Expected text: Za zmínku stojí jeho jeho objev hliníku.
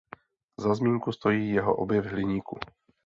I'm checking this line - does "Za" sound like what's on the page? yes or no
yes